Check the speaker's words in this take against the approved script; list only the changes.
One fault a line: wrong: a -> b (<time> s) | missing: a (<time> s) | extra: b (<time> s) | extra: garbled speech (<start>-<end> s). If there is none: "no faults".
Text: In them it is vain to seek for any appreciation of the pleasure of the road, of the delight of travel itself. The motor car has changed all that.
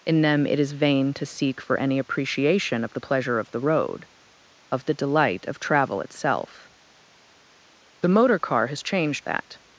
missing: all (9.2 s)